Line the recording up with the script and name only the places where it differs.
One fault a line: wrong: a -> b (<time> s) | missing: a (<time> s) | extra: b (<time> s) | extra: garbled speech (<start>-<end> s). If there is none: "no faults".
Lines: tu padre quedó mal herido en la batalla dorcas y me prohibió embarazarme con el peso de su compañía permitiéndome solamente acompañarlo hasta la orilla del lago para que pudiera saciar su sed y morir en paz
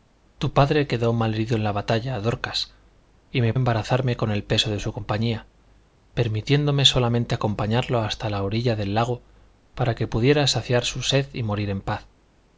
missing: prohibió (3.5 s)